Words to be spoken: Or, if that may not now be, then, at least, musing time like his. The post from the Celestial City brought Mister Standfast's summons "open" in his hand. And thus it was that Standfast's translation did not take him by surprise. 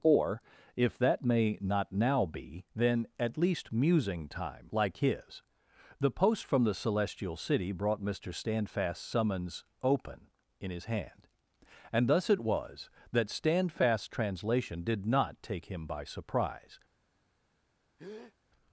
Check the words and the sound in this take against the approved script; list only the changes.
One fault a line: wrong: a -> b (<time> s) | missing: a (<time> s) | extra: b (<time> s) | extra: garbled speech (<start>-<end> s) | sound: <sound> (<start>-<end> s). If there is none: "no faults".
sound: breath (18.0-18.3 s)